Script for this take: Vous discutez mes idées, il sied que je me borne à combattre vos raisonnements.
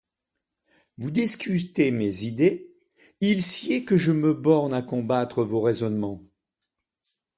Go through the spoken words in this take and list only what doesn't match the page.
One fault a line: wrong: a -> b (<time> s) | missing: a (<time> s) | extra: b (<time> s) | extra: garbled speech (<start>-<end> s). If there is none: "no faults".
no faults